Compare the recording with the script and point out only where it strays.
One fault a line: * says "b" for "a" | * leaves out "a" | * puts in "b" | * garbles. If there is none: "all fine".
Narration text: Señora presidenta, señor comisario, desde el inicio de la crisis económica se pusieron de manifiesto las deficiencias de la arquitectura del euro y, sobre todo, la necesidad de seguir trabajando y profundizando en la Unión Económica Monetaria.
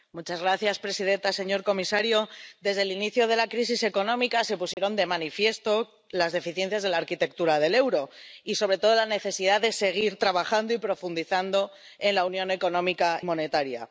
all fine